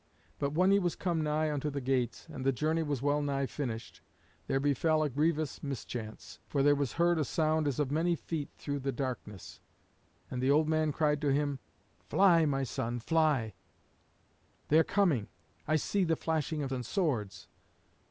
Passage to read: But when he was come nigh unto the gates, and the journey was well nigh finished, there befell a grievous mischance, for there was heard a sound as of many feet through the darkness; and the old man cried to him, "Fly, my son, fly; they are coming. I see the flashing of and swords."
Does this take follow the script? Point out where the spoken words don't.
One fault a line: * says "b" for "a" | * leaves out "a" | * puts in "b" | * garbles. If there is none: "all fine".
all fine